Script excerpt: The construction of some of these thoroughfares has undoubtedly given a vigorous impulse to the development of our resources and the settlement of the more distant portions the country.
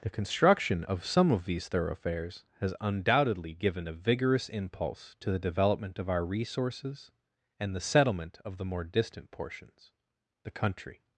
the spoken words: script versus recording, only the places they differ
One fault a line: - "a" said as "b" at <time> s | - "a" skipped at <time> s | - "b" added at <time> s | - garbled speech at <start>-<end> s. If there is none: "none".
none